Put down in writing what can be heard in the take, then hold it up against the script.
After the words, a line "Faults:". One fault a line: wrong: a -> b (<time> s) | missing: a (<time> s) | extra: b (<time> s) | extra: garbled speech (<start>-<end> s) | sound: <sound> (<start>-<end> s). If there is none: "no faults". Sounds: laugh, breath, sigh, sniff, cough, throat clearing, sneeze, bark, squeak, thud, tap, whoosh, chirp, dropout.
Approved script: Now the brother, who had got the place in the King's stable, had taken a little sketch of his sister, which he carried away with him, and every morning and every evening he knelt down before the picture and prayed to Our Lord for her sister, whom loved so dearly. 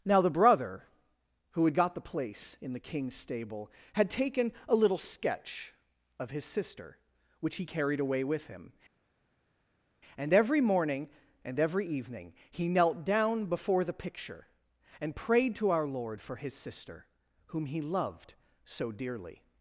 Now the brother, who had got the place in the King's stable, had taken a little sketch of his sister, which he carried away with him, and every morning and every evening he knelt down before the picture and prayed to Our Lord for his sister, whom he loved so dearly.
Faults:
wrong: her -> his (16.4 s)
extra: he (17.7 s)